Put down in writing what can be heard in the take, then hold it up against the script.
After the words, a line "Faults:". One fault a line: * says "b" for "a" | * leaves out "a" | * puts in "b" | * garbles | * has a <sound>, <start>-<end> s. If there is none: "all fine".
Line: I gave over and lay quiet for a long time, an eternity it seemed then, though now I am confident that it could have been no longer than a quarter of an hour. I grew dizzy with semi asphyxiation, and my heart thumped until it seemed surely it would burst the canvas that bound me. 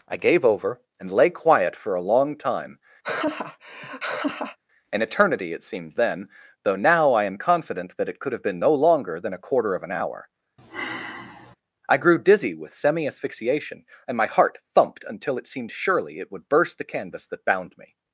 I gave over and lay quiet for a long time, an eternity it seemed then, though now I am confident that it could have been no longer than a quarter of an hour. I grew dizzy with semi asphyxiation, and my heart thumped until it seemed surely it would burst the canvas that bound me.
Faults:
* has a laugh, 3.0-4.6 s
* has a sigh, 10.6-11.6 s